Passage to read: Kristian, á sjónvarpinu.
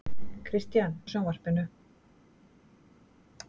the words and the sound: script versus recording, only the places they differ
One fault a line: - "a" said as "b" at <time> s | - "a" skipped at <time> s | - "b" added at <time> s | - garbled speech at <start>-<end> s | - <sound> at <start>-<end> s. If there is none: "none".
none